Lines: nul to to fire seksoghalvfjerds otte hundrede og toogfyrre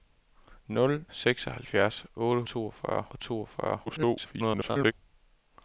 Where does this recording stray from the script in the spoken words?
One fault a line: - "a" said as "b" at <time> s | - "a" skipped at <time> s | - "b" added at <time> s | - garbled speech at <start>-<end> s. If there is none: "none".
- "to to fire" skipped at 1.1 s
- "hundrede" said as "toogfyrre" at 2.5 s
- garbled speech at 3.9-4.9 s